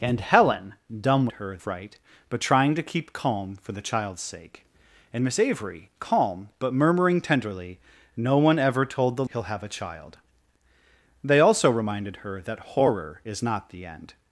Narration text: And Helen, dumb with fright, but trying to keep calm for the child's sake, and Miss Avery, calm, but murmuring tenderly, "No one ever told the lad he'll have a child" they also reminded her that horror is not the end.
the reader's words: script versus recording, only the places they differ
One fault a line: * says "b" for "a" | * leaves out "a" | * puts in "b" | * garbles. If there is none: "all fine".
* says "her" for "with"
* leaves out "lad"